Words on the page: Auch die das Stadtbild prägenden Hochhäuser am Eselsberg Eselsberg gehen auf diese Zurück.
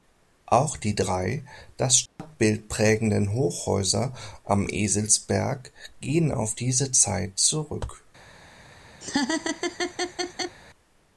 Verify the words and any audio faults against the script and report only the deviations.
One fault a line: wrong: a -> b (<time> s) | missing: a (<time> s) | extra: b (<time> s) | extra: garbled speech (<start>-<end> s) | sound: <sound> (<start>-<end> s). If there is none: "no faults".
extra: drei (0.9 s)
sound: dropout (2.1-2.2 s)
missing: Eselsberg (5.7 s)
extra: Zeit (6.9 s)
sound: laugh (9.0-10.6 s)